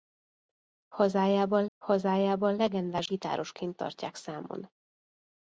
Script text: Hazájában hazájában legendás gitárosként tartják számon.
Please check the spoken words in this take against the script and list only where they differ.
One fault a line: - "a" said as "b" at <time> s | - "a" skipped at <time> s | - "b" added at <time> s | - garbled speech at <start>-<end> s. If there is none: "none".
none